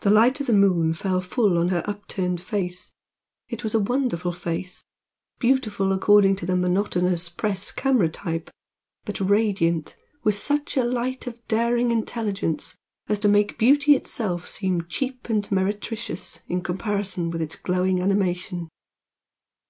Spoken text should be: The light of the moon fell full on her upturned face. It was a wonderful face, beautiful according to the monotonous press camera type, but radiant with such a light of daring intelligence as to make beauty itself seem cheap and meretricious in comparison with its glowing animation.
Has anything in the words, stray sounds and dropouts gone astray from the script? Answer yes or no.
no